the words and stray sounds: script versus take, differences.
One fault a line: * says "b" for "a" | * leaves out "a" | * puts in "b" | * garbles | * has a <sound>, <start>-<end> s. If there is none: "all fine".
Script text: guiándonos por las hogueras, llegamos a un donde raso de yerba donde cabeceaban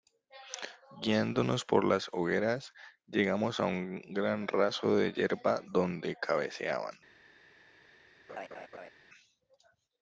* says "gran" for "donde"
* has a laugh, 8.3-8.9 s